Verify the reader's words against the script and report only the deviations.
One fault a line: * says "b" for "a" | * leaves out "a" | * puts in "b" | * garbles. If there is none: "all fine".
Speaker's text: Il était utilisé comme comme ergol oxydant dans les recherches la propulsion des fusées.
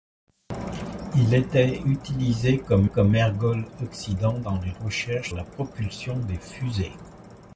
all fine